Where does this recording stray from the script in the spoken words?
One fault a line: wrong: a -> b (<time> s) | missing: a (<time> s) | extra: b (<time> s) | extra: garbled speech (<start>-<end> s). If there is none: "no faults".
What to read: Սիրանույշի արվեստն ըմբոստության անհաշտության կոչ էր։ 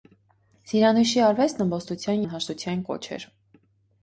no faults